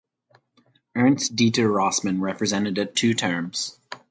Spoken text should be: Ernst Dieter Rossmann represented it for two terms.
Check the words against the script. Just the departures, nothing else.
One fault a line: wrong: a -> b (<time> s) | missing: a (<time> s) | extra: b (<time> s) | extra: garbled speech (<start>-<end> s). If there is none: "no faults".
missing: for (3.0 s)